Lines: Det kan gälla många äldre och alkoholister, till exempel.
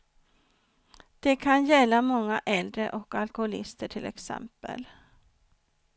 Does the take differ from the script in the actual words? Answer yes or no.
no